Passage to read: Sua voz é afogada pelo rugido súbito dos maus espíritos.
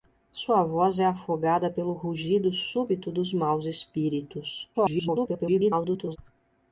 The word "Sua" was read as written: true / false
true